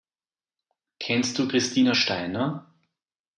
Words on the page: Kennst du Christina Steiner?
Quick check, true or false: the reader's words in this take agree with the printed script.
true